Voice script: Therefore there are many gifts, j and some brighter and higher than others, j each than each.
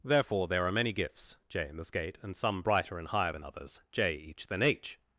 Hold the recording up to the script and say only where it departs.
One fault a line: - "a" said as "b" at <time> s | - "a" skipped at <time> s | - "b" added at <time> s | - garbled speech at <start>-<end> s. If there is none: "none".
- "in the skate" added at 1.7 s
- "each" said as "h" at 4.6 s